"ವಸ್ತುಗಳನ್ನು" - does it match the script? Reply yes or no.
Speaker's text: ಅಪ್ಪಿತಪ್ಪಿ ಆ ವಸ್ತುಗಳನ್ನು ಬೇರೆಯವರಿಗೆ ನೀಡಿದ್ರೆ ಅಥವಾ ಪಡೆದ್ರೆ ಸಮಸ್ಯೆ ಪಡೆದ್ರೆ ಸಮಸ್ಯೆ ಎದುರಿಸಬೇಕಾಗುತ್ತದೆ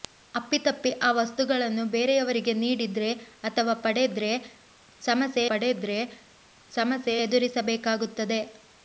yes